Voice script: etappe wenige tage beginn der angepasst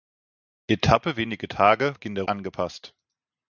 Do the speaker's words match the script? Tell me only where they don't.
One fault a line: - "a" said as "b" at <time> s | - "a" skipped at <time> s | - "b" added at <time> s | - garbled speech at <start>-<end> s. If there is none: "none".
none